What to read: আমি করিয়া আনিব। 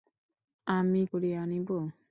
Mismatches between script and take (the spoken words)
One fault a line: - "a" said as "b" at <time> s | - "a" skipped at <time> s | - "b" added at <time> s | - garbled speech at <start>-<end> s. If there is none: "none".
none